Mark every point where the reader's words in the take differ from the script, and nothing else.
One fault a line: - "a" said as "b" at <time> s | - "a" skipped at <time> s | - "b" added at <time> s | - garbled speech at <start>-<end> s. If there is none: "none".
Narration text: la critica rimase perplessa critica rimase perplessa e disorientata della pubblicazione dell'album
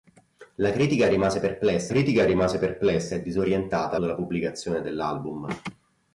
none